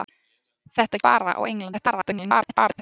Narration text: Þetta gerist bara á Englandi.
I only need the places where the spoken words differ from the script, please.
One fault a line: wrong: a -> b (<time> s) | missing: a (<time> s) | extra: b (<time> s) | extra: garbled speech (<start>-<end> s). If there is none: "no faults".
missing: gerist (1.0 s)
extra: garbled speech (1.7-2.8 s)